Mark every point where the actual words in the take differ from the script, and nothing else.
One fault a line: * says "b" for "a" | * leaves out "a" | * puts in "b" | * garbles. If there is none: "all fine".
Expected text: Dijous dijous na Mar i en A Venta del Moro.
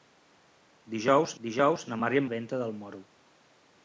all fine